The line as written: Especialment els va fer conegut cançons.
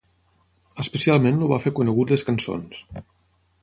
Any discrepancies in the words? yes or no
yes